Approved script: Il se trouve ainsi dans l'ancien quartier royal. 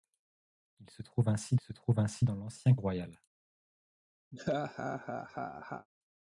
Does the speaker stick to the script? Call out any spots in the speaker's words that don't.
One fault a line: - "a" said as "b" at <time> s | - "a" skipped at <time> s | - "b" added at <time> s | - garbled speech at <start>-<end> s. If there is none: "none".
- "se trouve ainsi" added at 1.6 s
- "quartier" skipped at 2.7 s